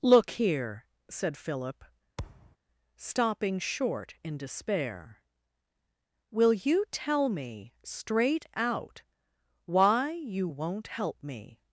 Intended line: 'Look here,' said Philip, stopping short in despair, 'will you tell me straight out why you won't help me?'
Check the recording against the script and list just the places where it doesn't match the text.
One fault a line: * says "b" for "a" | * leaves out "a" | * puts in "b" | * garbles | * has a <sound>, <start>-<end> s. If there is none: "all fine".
* has a thud, 2.2-2.6 s